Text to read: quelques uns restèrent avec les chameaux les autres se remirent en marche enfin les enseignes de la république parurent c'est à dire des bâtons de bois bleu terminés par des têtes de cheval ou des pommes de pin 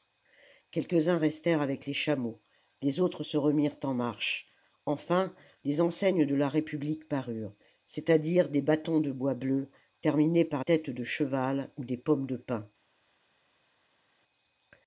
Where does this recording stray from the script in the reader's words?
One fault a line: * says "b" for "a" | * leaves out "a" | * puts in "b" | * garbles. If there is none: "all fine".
* leaves out "des"